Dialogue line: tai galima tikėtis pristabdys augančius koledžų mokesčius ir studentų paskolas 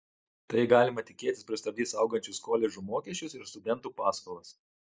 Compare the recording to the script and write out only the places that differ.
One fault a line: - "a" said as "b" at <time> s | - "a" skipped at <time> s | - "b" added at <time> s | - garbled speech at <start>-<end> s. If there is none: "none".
none